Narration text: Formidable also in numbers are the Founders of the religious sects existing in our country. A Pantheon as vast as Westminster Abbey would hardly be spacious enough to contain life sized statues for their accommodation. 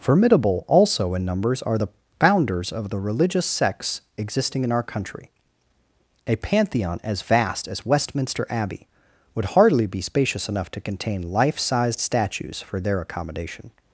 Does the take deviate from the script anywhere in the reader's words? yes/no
no